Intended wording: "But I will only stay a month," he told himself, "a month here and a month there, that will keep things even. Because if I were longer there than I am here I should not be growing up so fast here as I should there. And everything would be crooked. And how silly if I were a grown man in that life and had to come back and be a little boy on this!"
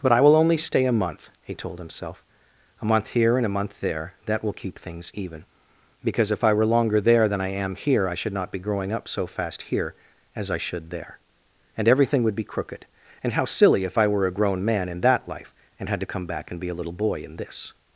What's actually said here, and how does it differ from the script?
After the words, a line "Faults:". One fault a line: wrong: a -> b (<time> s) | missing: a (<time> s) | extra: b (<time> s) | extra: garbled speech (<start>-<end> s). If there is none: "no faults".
"But I will only stay a month," he told himself, "a month here and a month there, that will keep things even. Because if I were longer there than I am here I should not be growing up so fast here as I should there. And everything would be crooked. And how silly if I were a grown man in that life and had to come back and be a little boy in this!"
Faults:
wrong: on -> in (17.2 s)